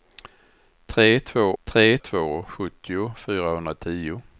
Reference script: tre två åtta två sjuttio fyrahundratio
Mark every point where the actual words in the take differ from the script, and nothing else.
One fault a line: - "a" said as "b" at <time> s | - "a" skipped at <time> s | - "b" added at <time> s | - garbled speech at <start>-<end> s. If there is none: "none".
- "åtta" said as "tre" at 1.6 s